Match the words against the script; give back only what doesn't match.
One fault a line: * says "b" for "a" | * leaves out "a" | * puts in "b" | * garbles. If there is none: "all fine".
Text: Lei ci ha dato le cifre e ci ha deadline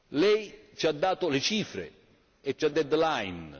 all fine